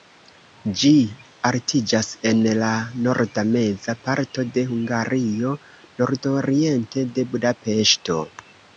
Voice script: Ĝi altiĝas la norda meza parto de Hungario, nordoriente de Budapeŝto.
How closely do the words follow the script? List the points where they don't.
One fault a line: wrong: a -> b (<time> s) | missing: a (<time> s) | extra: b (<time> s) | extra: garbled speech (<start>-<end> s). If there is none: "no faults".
extra: en (2.3 s)